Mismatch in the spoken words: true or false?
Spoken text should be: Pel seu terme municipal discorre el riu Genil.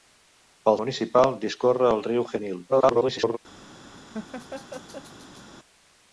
true